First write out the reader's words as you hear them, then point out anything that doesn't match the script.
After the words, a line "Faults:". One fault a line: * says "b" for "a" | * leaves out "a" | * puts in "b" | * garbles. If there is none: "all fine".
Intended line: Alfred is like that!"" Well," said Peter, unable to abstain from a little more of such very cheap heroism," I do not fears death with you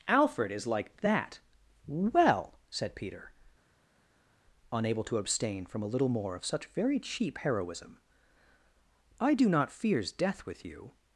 Alfred is like that!"" Well," said Peter, unable to abstain from a little more of such very cheap heroism," I do not fears death with you
Faults:
all fine